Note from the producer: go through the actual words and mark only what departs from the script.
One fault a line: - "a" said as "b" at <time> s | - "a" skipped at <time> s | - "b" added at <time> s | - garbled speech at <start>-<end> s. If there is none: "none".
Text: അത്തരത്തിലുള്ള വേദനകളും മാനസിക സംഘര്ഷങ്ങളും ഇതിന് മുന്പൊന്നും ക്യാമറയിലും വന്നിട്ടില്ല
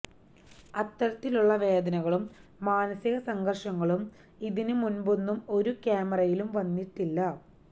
- "ഒരു" added at 5.6 s